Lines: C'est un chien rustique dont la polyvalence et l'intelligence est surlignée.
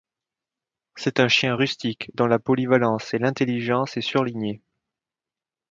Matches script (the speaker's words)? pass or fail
pass